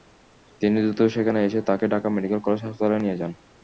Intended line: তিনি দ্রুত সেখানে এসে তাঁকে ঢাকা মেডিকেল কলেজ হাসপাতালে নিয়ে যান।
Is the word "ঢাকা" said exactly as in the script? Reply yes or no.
yes